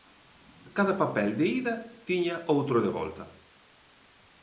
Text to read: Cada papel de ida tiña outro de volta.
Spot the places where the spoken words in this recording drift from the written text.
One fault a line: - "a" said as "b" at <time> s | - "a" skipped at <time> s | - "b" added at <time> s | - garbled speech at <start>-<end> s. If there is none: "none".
none